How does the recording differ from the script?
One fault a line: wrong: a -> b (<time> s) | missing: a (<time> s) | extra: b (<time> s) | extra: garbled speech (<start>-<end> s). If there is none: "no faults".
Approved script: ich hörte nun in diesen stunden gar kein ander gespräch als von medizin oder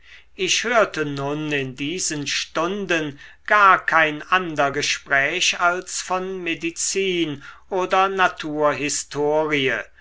no faults